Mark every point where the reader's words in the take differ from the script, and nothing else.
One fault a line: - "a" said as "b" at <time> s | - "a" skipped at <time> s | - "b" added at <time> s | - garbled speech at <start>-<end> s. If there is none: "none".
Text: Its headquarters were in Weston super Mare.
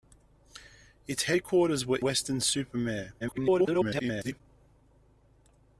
- "in" skipped at 2.0 s
- garbled speech at 3.2-4.4 s